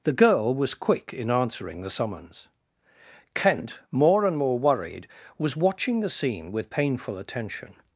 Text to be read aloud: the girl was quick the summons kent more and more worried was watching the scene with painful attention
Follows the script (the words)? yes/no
no